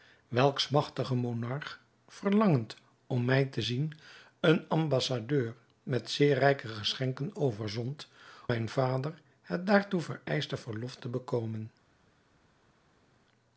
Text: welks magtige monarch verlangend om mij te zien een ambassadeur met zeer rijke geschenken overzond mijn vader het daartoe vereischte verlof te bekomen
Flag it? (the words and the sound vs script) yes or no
no